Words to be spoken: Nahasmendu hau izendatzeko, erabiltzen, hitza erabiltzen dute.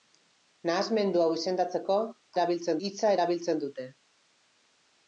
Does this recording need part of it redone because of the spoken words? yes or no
no